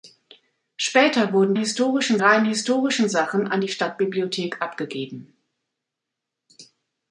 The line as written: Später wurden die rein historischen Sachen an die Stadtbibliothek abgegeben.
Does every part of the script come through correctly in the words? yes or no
no